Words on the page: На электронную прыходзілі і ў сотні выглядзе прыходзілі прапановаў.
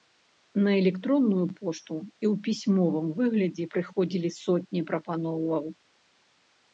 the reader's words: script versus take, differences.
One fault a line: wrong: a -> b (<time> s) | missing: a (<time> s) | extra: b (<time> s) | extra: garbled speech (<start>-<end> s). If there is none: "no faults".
wrong: прыходзілі -> пошту (1.6 s)
wrong: сотні -> пісьмовым (2.5 s)
extra: сотні (4.4 s)